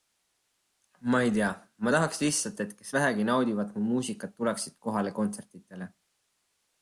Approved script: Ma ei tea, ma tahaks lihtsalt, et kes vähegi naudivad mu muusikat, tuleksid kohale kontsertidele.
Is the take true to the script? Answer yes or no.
yes